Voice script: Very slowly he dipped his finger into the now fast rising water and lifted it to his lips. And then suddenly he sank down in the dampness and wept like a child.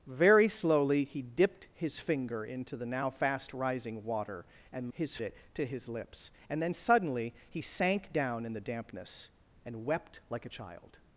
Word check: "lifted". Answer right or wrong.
wrong